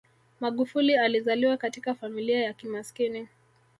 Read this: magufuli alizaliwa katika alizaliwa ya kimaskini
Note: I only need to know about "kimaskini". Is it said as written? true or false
true